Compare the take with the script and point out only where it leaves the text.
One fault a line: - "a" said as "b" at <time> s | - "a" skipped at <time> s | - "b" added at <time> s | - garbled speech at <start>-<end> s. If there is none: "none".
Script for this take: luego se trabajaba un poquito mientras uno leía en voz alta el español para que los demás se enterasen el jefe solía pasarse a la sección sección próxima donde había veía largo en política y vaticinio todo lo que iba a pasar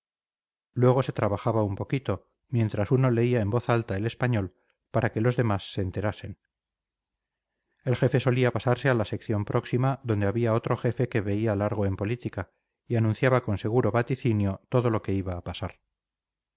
- "sección" skipped at 9.5 s
- "otro jefe que" added at 10.5 s
- "anunciaba con seguro" added at 13.0 s